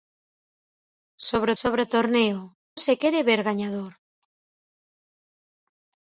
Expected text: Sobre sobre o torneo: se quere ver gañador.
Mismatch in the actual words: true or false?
false